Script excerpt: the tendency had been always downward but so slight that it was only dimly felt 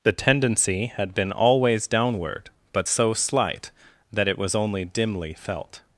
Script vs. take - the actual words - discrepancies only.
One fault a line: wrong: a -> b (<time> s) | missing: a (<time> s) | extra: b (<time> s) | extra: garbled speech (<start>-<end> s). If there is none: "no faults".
no faults